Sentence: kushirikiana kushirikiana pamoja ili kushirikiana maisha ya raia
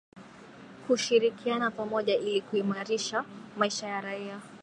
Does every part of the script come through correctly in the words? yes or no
no